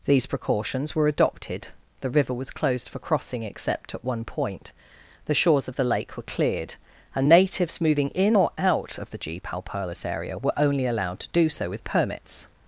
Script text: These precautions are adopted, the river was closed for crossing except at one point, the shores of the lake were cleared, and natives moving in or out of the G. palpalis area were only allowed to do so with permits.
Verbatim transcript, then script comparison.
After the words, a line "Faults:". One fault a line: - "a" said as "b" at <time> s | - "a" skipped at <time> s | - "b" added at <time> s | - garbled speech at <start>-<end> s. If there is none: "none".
These precautions were adopted, the river was closed for crossing except at one point, the shores of the lake were cleared, and natives moving in or out of the G. palpalis area were only allowed to do so with permits.
Faults:
- "are" said as "were" at 0.9 s